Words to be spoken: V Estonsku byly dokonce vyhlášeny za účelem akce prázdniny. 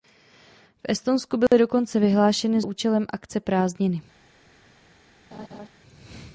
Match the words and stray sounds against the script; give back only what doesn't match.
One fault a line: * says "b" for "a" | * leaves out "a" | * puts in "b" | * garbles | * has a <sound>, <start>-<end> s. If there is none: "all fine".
* has a dropout, 1.5-1.5 s
* leaves out "za"
* has a laugh, 5.3-5.7 s